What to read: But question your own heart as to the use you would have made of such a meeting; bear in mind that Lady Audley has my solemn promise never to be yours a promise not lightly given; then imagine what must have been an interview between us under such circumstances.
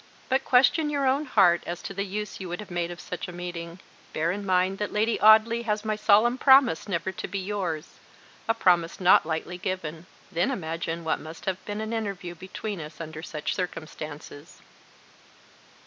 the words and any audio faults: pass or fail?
pass